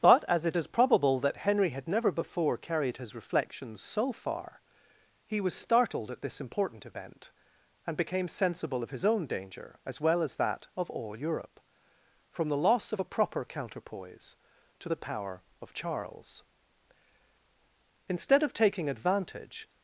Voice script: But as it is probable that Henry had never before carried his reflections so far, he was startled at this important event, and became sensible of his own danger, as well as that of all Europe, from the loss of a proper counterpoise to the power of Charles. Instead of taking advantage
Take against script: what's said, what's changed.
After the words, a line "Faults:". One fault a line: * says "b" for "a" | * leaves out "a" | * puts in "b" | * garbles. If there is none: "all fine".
But as it is probable that Henry had never before carried his reflections so far, he was startled at this important event, and became sensible of his own danger, as well as that of all Europe, from the loss of a proper counterpoise to the power of Charles. Instead of taking advantage
Faults:
all fine